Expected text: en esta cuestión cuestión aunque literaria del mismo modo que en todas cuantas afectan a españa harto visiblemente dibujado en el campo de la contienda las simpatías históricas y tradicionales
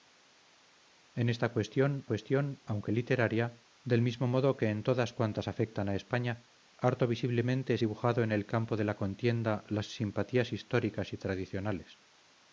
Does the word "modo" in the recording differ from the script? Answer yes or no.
no